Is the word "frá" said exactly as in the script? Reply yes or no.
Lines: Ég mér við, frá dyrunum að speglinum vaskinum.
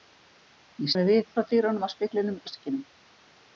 yes